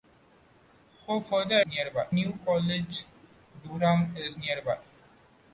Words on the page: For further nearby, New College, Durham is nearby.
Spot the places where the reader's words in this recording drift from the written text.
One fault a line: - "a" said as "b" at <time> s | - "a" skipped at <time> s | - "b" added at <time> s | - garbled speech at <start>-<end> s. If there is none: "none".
none